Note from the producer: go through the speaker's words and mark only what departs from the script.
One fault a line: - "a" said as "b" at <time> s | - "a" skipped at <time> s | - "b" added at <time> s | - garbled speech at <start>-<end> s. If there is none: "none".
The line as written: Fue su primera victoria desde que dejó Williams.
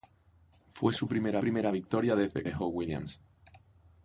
- "primera" added at 1.4 s
- "que" skipped at 2.4 s